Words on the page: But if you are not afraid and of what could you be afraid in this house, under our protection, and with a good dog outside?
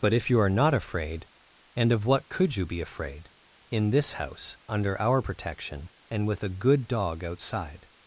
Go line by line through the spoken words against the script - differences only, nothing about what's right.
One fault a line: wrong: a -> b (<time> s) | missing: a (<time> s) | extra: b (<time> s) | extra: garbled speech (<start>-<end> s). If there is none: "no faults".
no faults